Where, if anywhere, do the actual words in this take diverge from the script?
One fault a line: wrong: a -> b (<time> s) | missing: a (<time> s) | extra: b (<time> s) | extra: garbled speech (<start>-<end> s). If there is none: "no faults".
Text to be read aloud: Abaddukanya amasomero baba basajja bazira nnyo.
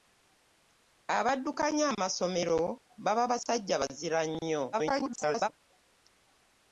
extra: garbled speech (4.7-5.5 s)